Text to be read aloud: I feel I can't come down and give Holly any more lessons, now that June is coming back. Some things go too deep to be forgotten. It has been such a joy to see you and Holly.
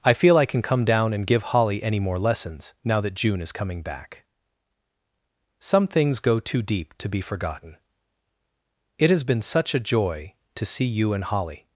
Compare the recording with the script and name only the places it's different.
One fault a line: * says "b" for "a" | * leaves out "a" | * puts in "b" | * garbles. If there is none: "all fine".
* says "can" for "can't"